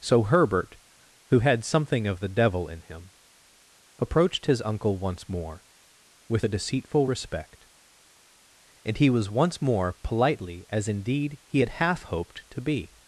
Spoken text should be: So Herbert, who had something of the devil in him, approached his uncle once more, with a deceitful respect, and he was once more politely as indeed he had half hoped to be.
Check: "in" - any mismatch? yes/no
no